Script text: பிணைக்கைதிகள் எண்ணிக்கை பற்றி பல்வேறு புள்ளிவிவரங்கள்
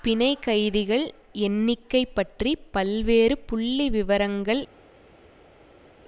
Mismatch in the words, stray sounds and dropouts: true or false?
false